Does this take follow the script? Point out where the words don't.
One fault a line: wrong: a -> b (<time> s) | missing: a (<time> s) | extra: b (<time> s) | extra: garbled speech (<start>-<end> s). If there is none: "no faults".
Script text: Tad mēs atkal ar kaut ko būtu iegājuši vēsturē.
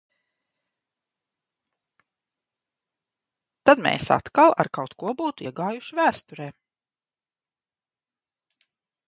no faults